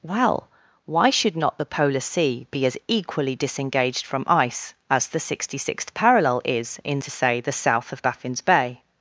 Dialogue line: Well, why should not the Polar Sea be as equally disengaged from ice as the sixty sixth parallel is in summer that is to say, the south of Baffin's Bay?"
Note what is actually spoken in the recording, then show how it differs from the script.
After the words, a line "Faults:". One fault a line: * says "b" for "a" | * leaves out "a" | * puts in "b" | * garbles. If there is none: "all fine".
Well, why should not the Polar Sea be as equally disengaged from ice as the sixty sixth parallel is in to say, the south of Baffin's Bay?"
Faults:
* leaves out "summer that is"